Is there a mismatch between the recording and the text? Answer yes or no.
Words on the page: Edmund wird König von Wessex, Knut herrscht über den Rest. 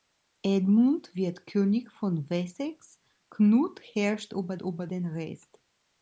yes